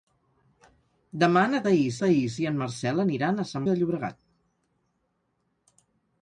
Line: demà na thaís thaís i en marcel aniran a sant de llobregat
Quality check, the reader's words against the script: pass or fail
pass